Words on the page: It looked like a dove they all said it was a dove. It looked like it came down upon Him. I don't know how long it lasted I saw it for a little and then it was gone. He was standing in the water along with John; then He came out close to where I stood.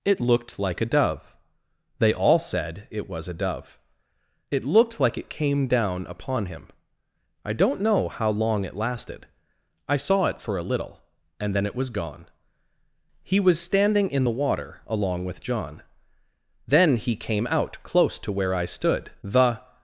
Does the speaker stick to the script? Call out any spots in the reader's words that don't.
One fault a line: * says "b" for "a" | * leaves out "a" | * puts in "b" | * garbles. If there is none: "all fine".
* puts in "The"